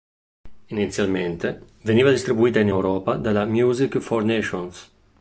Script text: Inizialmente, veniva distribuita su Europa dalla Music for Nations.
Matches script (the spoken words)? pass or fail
fail